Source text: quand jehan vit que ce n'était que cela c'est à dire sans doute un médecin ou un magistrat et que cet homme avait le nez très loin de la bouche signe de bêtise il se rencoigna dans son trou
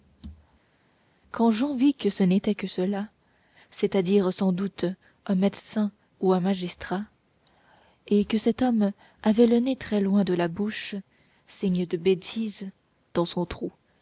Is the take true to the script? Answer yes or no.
no